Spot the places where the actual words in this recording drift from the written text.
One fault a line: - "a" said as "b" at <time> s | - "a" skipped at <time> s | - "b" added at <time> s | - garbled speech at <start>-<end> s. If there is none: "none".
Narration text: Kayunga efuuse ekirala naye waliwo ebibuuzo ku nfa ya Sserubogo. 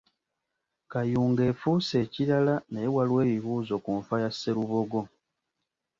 none